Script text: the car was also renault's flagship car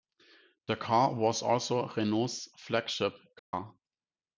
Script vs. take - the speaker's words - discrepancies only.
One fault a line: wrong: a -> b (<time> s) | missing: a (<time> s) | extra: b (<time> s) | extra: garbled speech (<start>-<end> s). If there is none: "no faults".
no faults